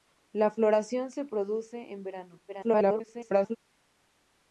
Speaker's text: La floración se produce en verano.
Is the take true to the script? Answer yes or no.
no